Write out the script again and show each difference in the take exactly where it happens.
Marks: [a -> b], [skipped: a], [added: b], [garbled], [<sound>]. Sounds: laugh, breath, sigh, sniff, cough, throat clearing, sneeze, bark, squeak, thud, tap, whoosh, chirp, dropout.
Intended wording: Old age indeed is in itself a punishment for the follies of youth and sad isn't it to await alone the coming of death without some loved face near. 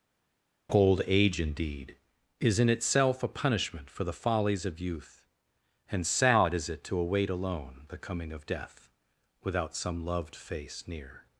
Old age indeed is in itself a punishment for the follies of youth and sad [isn't -> is] it to await alone the coming of death without some loved face near.